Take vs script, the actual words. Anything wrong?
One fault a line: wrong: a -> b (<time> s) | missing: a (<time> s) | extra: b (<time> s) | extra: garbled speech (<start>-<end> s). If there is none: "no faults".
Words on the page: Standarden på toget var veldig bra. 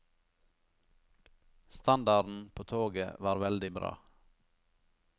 no faults